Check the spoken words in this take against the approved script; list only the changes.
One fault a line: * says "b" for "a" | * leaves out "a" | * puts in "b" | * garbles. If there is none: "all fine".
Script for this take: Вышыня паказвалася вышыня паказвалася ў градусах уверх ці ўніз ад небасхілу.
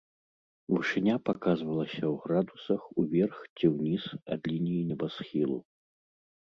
* leaves out "вышыня паказвалася"
* puts in "лініі"